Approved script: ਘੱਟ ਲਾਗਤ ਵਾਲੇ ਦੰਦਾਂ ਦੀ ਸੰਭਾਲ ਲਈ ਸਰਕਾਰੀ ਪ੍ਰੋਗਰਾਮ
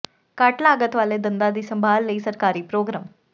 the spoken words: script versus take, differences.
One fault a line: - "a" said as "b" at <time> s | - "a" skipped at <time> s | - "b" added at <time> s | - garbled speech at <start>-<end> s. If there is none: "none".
none